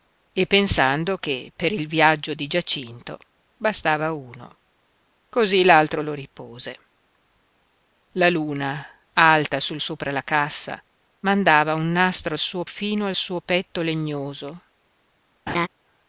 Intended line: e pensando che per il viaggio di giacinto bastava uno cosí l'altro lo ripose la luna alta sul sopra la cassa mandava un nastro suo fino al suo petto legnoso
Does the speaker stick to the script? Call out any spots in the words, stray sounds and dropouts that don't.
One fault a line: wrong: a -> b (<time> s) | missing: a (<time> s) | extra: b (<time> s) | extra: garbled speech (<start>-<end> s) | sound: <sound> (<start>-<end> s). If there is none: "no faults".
sound: laugh (15.5-15.7 s)